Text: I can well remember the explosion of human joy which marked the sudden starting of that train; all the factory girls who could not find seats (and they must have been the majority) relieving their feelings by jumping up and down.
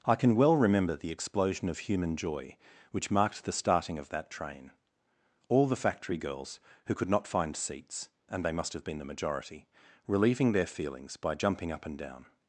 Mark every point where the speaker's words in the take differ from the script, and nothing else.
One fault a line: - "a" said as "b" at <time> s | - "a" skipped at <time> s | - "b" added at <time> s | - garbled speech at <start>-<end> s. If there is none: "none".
- "sudden" skipped at 3.5 s